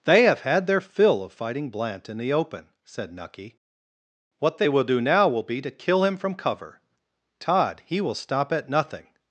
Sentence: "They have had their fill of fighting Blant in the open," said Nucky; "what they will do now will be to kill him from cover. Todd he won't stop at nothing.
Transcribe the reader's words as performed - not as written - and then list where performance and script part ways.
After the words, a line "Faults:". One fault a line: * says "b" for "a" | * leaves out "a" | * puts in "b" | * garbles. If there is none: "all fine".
"They have had their fill of fighting Blant in the open," said Nucky; "what they will do now will be to kill him from cover. Todd he will stop at nothing.
Faults:
* says "will" for "won't"